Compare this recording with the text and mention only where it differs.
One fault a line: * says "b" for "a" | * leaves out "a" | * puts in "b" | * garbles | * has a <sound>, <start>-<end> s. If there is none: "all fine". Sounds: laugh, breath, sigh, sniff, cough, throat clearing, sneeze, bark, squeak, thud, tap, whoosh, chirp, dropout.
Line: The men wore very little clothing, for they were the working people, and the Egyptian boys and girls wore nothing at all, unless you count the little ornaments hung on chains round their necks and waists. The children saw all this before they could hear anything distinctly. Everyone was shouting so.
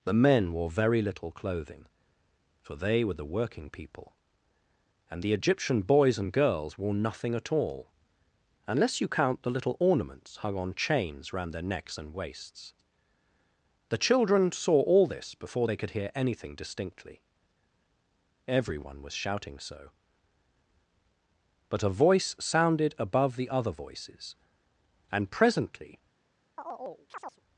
* puts in "But a voice sounded above the other voices and presently"
* has a chirp, 26.6-27.4 s